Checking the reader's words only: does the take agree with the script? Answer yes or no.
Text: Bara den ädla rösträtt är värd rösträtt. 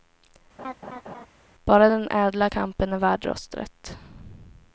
no